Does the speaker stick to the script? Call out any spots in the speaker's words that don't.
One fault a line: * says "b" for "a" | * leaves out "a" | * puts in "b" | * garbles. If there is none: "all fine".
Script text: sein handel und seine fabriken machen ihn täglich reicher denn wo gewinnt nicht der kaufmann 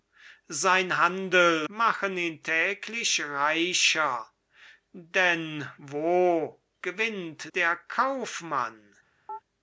* leaves out "und seine fabriken"
* leaves out "nicht"